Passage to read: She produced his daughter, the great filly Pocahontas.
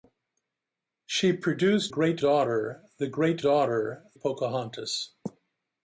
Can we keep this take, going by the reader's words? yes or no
no